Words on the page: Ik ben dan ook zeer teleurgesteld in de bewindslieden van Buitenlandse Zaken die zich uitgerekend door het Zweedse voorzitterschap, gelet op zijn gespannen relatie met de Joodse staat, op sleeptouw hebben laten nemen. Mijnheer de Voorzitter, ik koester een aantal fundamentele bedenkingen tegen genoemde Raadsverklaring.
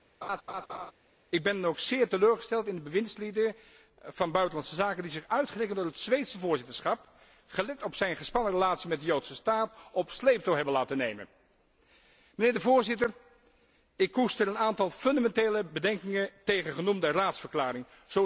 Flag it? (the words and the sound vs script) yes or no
yes